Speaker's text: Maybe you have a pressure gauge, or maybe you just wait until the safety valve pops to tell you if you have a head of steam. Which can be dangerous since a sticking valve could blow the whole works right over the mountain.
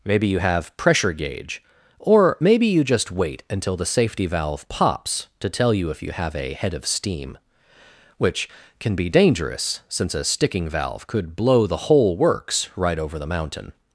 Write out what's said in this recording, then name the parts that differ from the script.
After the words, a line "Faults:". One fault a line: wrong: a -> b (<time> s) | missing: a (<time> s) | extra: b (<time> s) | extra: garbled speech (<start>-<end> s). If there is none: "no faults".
Maybe you have pressure gauge, or maybe you just wait until the safety valve pops to tell you if you have a head of steam. Which can be dangerous since a sticking valve could blow the whole works right over the mountain.
Faults:
missing: a (0.8 s)